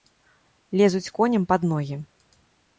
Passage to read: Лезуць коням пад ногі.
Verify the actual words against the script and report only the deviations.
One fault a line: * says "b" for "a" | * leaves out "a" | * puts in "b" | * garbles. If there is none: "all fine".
all fine